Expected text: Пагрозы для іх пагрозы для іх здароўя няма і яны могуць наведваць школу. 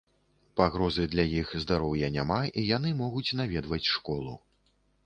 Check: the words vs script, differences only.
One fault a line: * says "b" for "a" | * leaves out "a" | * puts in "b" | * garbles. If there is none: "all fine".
* leaves out "пагрозы для іх"